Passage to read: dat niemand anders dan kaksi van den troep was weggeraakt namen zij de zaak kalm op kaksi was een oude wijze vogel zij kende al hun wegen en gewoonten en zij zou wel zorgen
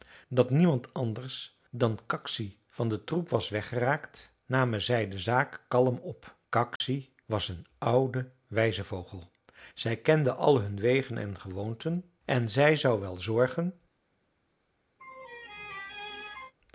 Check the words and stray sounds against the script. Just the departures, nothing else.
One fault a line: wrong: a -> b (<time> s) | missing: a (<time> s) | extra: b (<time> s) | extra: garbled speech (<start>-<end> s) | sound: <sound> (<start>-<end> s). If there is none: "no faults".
sound: dropout (6.8-6.8 s)
sound: laugh (15.0-16.5 s)